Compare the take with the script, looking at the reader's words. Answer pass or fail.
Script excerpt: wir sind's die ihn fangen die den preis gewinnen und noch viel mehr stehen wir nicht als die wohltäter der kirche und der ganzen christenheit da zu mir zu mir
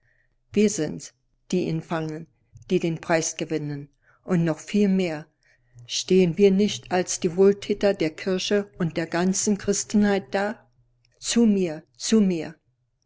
pass